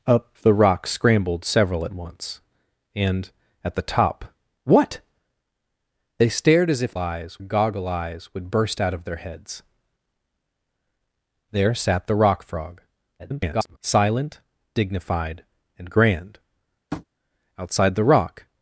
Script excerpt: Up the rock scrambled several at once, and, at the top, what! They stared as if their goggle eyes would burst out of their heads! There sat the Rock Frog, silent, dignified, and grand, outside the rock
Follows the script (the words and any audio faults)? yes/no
no